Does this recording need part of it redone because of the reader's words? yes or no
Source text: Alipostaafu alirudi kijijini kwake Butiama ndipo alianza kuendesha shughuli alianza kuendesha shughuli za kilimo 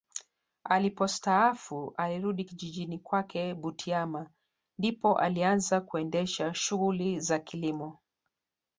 yes